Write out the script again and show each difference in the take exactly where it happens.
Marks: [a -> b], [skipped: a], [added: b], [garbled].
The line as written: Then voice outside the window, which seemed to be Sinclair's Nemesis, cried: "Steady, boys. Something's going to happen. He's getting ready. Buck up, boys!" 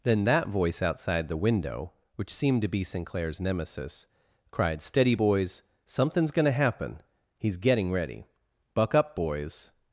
Then [added: that] voice outside the window, which seemed to be Sinclair's Nemesis, cried: "Steady, boys. Something's going to happen. He's getting ready. Buck up, boys!"